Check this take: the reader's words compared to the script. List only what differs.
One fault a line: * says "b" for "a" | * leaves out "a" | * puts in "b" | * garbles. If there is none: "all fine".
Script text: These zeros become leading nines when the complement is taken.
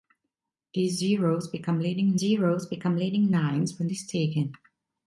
* puts in "zeros become leading"
* leaves out "the complement"